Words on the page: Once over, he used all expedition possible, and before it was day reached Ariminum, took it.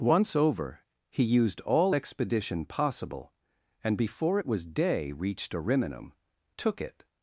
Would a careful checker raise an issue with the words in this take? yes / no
no